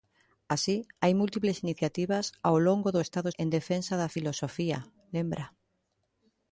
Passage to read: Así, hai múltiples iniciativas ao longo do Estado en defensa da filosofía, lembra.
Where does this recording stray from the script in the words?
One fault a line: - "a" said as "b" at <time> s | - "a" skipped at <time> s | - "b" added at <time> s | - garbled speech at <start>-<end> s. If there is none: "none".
none